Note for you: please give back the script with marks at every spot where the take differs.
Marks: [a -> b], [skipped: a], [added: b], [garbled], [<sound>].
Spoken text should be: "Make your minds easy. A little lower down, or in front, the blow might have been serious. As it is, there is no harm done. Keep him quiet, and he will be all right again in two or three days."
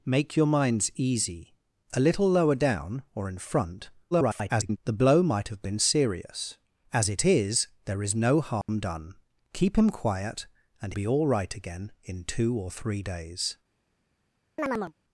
"Make your minds easy. A little lower down, or in front, [garbled] the blow might have been serious. As it is, there is no harm [dropout] done. Keep him quiet, and [skipped: he will] be all right again in two or three days." [chirp]